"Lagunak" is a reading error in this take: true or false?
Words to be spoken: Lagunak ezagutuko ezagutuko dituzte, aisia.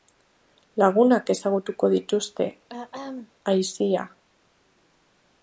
false